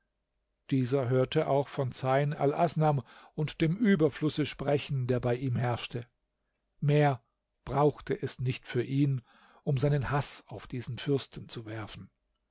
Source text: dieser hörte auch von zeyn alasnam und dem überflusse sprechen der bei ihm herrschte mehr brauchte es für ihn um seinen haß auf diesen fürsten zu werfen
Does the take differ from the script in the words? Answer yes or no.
yes